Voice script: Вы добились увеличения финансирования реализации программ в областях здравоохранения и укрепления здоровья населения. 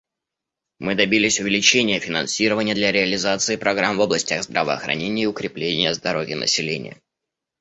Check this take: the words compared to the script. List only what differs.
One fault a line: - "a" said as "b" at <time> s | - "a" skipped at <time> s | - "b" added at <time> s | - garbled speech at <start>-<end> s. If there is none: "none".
- "Вы" said as "Мы" at 0.8 s
- "для" added at 2.7 s